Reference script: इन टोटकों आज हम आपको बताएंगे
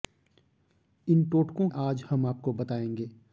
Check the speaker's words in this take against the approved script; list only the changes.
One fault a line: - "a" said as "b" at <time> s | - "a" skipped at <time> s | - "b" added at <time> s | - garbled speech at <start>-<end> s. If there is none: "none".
none